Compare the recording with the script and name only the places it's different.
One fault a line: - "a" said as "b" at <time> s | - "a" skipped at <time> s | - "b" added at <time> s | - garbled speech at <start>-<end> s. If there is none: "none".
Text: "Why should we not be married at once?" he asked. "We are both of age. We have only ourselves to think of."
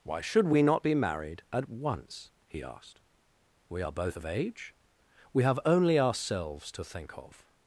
none